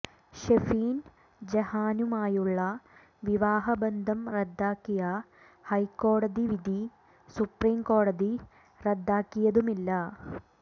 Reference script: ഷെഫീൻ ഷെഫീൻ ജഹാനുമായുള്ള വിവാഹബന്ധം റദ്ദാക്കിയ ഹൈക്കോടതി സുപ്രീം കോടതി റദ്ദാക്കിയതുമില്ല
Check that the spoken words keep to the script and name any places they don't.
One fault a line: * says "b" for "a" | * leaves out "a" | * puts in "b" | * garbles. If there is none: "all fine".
* leaves out "ഷെഫീൻ"
* puts in "വിധി"